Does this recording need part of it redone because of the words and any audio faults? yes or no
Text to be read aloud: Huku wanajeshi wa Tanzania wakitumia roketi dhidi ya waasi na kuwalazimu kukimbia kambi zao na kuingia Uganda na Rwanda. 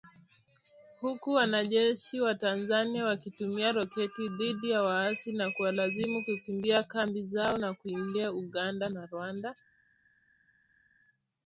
no